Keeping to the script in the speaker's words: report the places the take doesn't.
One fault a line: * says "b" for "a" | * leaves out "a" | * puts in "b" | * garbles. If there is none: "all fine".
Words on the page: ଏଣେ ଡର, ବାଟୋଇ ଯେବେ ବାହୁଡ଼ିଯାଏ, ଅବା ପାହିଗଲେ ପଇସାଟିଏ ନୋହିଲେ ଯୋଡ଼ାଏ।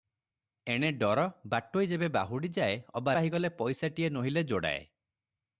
all fine